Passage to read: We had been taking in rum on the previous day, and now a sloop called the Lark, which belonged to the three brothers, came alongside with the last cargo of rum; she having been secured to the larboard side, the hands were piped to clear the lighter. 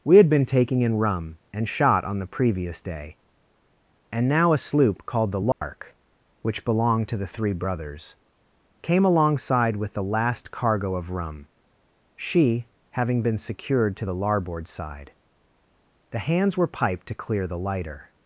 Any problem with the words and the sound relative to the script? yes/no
yes